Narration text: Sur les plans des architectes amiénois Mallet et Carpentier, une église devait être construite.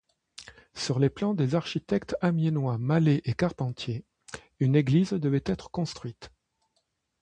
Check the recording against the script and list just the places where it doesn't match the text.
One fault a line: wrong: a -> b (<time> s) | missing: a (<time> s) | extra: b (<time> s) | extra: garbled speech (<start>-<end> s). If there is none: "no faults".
no faults